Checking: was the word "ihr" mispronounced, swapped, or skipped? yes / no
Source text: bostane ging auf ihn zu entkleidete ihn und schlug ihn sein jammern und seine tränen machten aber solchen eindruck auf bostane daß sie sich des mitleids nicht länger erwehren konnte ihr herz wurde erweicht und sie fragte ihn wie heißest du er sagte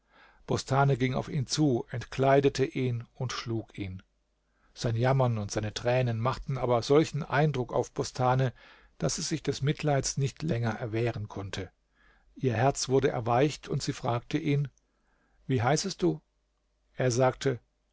no